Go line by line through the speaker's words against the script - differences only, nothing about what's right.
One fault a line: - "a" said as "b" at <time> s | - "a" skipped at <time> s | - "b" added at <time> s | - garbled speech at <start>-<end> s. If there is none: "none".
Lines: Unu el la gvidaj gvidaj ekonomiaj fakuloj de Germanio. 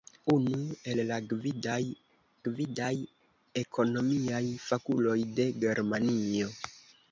none